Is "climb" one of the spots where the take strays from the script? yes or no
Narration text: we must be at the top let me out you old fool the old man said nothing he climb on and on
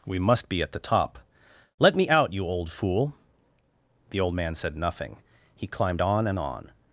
yes